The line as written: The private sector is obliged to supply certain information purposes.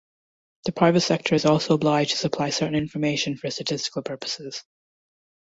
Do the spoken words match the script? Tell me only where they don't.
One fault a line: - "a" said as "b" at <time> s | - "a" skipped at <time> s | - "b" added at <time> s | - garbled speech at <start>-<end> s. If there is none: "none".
- "also" added at 1.4 s
- "for statistical" added at 3.3 s